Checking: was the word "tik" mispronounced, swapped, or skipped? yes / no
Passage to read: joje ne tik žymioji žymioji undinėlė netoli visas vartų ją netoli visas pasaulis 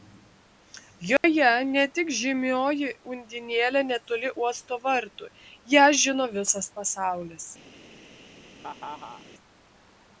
no